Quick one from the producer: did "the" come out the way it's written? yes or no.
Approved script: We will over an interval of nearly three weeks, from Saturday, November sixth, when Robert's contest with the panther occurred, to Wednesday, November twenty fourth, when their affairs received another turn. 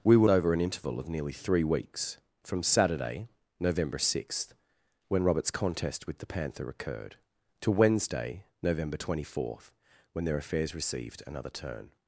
yes